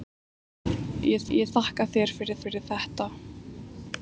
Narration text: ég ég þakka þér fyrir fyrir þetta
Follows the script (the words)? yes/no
yes